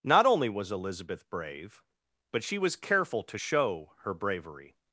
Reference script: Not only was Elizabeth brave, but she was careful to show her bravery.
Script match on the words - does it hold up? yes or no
yes